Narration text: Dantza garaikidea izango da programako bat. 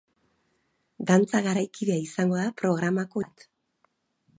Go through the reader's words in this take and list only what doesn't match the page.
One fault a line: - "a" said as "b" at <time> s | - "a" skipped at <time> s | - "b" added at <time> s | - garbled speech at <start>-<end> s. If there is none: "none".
none